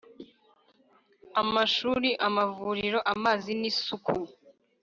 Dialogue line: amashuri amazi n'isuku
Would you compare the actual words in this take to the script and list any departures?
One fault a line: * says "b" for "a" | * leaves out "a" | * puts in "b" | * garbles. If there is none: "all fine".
* puts in "amavuriro"